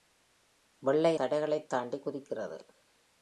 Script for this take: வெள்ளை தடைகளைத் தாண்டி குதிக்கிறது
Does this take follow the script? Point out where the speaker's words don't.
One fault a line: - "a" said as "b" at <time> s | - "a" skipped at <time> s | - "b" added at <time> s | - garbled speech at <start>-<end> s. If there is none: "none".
none